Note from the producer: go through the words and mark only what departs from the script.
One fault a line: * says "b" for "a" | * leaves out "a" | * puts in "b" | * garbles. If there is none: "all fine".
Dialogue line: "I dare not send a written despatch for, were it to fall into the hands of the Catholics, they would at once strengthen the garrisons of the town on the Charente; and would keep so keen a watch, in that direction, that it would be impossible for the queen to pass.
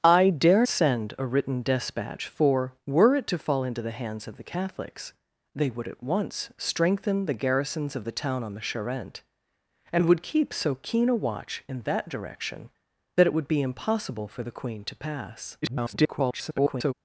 * leaves out "not"
* garbles